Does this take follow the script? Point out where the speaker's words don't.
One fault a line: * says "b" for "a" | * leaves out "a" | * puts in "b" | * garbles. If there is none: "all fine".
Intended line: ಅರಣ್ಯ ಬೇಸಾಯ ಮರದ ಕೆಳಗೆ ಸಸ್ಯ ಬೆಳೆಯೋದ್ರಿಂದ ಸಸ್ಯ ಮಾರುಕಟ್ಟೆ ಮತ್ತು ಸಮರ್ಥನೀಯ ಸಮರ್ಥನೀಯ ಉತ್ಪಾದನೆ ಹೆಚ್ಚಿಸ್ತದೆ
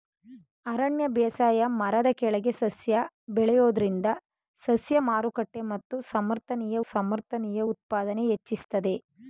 all fine